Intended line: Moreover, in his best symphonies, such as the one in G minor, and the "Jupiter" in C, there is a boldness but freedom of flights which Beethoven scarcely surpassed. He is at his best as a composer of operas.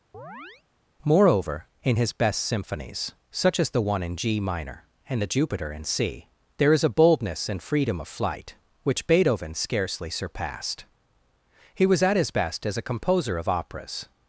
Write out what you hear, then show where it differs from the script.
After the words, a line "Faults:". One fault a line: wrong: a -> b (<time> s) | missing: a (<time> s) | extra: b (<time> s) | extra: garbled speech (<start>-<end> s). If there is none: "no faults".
Moreover, in his best symphonies, such as the one in G minor, and the "Jupiter" in C, there is a boldness and freedom of flight which Beethoven scarcely surpassed. He was at his best as a composer of operas.
Faults:
wrong: but -> and (7.5 s)
wrong: flights -> flight (8.1 s)
wrong: is -> was (11.8 s)